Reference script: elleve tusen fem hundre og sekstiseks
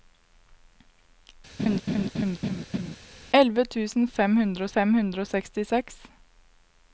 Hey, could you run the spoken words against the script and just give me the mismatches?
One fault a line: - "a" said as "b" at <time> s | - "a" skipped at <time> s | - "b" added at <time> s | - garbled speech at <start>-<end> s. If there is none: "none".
- "fem hundre" added at 4.8 s